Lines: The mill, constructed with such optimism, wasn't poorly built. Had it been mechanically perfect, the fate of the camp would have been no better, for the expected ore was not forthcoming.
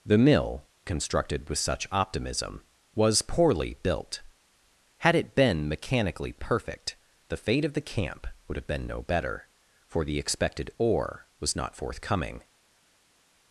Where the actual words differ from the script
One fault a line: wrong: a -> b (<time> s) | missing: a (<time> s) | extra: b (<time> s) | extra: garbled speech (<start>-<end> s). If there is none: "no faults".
wrong: wasn't -> was (3.0 s)